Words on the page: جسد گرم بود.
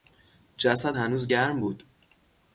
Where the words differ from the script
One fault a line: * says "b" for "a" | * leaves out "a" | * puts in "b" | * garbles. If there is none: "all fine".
* puts in "هنوز"